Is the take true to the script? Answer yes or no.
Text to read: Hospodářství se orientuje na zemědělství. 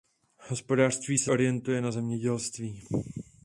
yes